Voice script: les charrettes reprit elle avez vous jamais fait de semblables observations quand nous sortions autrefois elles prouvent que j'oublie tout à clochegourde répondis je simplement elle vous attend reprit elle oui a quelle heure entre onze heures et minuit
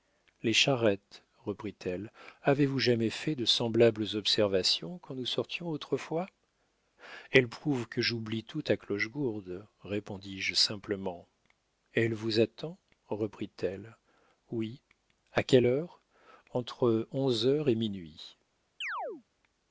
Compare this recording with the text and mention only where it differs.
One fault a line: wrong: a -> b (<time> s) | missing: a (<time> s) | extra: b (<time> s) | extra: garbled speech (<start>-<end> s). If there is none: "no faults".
no faults